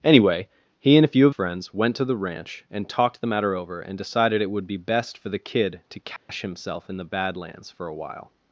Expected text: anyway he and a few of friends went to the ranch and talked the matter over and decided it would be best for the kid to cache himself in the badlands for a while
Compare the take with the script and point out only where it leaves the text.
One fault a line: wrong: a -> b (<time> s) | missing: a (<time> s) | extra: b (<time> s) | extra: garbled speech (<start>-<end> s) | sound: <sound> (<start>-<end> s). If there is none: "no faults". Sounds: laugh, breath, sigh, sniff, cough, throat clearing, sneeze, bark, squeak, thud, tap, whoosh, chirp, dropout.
sound: dropout (6.2-6.3 s)